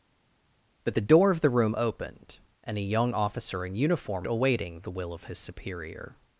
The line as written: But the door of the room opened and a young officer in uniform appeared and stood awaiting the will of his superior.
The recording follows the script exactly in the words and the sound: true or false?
false